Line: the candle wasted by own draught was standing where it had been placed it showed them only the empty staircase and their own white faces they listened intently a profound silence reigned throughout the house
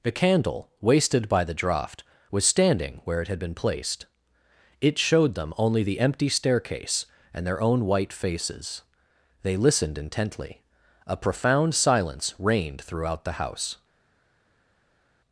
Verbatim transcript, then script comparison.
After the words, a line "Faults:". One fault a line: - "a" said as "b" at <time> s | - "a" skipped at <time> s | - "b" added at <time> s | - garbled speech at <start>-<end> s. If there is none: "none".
the candle wasted by the draught was standing where it had been placed it showed them only the empty staircase and their own white faces they listened intently a profound silence reigned throughout the house
Faults:
- "own" said as "the" at 1.4 s